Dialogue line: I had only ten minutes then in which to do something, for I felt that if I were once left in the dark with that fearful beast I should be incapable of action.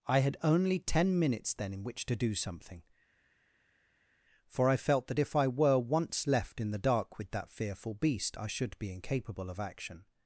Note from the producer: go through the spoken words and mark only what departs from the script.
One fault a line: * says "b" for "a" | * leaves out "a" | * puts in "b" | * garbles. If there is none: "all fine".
all fine